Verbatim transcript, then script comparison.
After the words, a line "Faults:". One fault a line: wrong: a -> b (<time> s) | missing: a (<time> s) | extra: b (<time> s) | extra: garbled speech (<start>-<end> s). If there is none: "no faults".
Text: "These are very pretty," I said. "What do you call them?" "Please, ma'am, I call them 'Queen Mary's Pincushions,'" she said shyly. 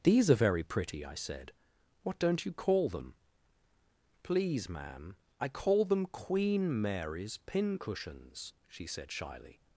"These are very pretty," I said. "What don't you call them?" "Please, ma'am, I call them 'Queen Mary's Pincushions,'" she said shyly.
Faults:
wrong: do -> don't (2.2 s)